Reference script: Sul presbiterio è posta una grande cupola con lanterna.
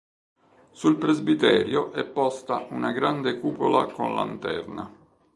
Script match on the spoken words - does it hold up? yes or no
yes